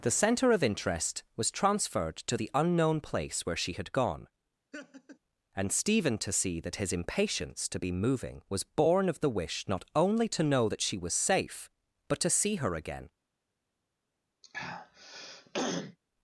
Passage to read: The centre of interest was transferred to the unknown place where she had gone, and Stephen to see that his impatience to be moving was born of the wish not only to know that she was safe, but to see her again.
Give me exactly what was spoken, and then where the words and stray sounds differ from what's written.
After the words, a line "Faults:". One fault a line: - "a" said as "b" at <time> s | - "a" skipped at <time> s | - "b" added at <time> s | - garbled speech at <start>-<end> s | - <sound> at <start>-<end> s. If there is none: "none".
The centre of interest was transferred to the unknown place where she had gone, and Stephen to see that his impatience to be moving was born of the wish not only to know that she was safe, but to see her again.
Faults:
- laugh at 4.7-5.2 s
- throat clearing at 14.4-16.0 s